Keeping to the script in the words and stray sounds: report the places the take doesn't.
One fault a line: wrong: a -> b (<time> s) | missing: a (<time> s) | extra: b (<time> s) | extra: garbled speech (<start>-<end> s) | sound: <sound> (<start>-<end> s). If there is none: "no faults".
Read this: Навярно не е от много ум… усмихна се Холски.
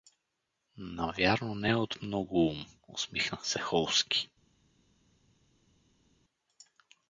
no faults